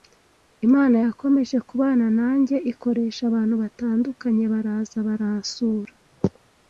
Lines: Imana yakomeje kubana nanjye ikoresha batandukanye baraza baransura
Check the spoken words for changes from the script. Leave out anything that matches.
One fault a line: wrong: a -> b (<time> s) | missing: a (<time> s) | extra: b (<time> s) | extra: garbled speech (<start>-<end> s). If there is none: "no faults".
extra: abantu (3.3 s)